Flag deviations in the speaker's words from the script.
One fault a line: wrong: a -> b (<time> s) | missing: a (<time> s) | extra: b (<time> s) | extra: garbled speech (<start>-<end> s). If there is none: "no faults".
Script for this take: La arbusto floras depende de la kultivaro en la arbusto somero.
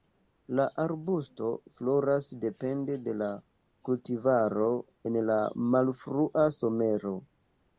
wrong: arbusto -> malfrua (5.8 s)